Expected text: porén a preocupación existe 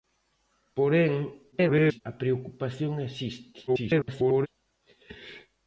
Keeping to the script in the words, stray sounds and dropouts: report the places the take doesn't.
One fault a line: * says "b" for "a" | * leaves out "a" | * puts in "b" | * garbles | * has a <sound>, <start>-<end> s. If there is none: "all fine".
* garbles
* garbles